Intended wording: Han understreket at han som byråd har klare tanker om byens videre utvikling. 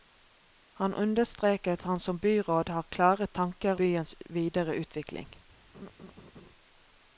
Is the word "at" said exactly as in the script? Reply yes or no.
no